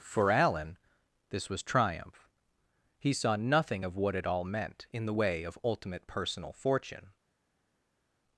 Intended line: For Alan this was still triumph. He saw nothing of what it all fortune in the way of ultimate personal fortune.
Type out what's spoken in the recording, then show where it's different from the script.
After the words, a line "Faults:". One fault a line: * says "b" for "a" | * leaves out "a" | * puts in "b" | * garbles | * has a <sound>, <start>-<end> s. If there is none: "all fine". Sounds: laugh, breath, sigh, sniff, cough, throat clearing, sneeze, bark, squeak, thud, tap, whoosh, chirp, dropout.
For Alan this was triumph. He saw nothing of what it all meant in the way of ultimate personal fortune.
Faults:
* leaves out "still"
* says "meant" for "fortune"